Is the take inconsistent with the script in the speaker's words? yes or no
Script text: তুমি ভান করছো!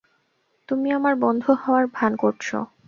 yes